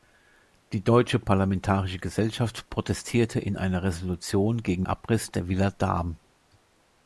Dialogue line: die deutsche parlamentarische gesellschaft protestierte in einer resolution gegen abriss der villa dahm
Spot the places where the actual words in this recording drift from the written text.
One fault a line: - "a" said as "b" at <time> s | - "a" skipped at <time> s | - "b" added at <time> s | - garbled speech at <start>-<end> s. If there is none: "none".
none